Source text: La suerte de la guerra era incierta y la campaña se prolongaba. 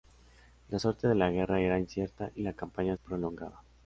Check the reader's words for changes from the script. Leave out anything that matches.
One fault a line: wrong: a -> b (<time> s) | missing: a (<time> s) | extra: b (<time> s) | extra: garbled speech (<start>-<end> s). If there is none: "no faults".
missing: se (2.9 s)